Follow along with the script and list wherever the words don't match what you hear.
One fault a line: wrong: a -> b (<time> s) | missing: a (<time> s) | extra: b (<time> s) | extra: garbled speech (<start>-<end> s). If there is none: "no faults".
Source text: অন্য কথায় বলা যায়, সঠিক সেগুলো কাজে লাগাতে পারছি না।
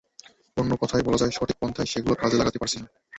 extra: পন্থায় (1.6 s)